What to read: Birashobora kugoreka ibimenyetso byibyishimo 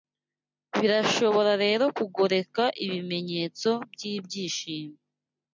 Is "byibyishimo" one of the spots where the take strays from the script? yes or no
no